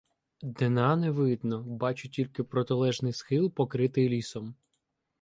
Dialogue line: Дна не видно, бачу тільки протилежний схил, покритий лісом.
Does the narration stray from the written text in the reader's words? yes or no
no